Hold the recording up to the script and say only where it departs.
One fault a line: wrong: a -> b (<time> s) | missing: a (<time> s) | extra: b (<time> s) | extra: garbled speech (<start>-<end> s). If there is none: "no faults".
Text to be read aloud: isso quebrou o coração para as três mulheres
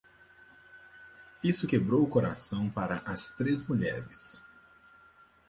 no faults